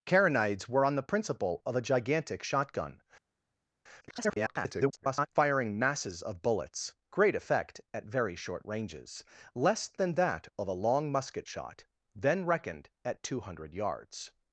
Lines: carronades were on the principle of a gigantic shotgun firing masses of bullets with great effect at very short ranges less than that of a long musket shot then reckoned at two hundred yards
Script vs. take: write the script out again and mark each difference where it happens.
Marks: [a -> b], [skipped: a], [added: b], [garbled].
carronades were on the principle of a gigantic shotgun [garbled] firing masses of bullets [skipped: with] great effect at very short ranges less than that of a long musket shot then reckoned at two hundred yards